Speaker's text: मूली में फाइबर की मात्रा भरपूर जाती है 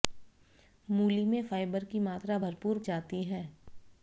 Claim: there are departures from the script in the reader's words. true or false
false